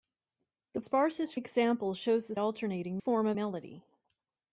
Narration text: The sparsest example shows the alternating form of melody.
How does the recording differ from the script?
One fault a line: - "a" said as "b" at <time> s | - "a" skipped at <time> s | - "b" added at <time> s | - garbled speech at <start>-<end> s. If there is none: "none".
none